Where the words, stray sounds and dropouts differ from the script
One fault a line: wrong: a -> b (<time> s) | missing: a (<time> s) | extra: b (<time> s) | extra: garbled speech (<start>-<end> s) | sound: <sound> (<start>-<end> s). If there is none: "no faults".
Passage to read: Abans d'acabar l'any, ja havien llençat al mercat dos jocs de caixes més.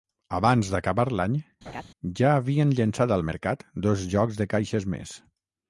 sound: laugh (1.7-1.8 s)